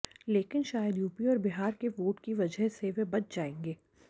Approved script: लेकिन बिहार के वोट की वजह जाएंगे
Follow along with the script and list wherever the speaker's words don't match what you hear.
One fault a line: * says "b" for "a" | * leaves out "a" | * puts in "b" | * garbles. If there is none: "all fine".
* puts in "शायद यूपी और"
* puts in "से वे बच"